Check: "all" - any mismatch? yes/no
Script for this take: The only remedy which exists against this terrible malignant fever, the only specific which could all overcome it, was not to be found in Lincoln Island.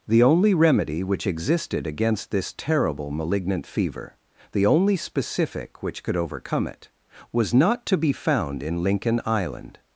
yes